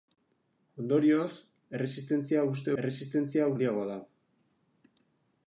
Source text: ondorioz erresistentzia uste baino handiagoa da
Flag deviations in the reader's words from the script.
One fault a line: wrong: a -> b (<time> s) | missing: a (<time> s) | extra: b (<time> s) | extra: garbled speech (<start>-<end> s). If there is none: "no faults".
wrong: baino -> erresistentzia (2.8 s)